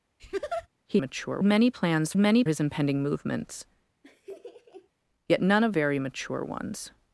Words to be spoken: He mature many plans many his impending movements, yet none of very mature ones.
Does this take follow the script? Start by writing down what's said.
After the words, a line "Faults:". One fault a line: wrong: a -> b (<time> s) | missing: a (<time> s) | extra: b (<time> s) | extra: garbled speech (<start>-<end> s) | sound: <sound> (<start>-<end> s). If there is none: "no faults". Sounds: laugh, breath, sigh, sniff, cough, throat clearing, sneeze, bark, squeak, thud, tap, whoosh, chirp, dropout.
He mature many plans many his impending movements, yet none of very mature ones.
Faults:
sound: laugh (0.2-0.7 s)
sound: laugh (4.0-4.9 s)